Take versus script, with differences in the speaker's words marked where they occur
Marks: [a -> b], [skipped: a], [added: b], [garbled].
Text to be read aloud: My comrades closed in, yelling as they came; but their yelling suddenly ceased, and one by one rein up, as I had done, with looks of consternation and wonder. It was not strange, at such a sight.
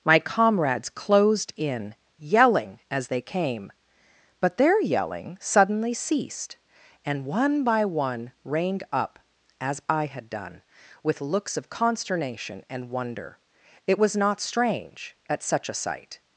My comrades closed in, yelling as they came; but their yelling suddenly ceased, and one by one [rein -> reined] up, as I had done, with looks of consternation and wonder. It was not strange, at such a sight.